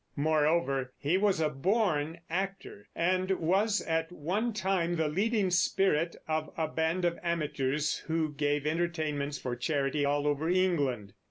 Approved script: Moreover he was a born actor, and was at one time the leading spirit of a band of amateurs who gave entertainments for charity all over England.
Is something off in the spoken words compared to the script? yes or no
no